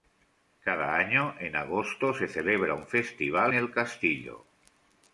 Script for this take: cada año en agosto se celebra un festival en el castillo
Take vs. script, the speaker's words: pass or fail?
fail